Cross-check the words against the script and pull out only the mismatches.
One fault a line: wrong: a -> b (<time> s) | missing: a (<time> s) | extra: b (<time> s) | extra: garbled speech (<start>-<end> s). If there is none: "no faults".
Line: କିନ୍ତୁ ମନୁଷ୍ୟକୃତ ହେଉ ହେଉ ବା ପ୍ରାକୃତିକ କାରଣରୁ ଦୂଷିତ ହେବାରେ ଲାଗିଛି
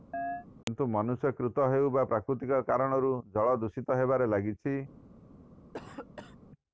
missing: ହେଉ (1.9 s)
extra: ଜଳ (3.3 s)